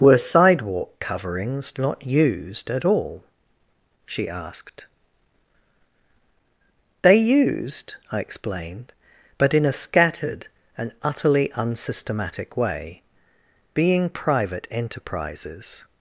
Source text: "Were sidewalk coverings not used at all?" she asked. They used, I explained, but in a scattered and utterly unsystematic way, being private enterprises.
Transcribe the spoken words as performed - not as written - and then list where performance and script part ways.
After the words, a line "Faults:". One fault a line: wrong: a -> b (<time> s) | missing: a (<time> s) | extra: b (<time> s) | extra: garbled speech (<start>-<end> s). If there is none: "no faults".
"Were sidewalk coverings not used at all?" she asked. They used, I explained, but in a scattered and utterly unsystematic way, being private enterprises.
Faults:
no faults